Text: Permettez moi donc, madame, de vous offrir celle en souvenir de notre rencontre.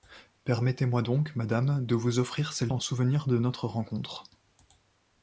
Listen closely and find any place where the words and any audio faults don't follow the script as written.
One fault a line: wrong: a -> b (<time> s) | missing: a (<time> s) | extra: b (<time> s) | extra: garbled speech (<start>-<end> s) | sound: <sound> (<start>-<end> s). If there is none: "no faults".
no faults